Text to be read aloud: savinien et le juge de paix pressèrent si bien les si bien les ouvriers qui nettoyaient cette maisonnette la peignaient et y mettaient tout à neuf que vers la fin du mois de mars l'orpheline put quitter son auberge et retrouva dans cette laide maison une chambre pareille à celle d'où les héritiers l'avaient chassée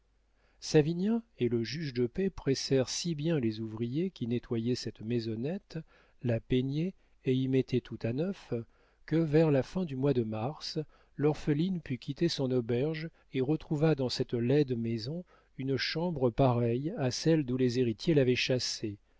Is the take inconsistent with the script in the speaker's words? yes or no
yes